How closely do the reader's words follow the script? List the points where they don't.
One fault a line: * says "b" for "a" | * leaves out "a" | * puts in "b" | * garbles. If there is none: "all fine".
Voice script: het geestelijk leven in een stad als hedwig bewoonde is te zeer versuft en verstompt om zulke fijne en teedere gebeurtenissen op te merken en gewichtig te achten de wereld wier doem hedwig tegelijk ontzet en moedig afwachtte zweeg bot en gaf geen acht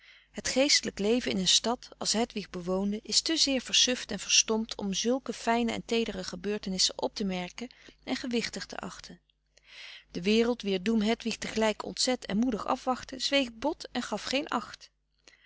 all fine